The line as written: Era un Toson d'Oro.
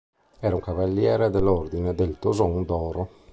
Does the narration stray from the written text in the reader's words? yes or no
yes